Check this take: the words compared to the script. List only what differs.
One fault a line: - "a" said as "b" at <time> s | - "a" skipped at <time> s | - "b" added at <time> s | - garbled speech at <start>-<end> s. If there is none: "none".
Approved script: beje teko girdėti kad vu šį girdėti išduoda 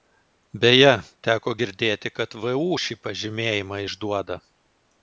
- "girdėti" said as "pažymėjimą" at 3.1 s